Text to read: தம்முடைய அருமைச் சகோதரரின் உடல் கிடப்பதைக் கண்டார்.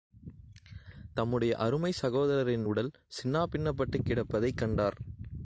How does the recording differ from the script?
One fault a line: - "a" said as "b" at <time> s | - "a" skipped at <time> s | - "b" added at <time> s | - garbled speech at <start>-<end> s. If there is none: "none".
- "சின்னாபின்னப்பட்டுக்" added at 3.1 s